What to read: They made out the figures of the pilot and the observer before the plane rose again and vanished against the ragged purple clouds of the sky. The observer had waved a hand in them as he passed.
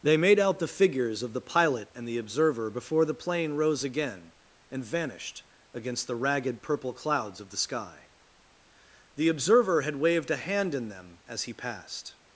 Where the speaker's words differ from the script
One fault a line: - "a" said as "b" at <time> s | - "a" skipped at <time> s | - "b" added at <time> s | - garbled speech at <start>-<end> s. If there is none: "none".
none